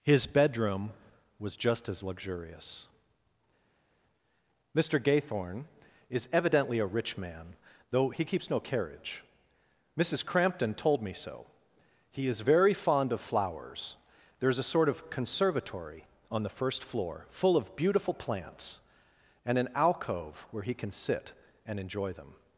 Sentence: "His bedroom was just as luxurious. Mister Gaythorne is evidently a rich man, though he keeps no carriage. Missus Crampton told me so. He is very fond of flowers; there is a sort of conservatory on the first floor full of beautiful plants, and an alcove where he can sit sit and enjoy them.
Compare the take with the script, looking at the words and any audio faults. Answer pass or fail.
fail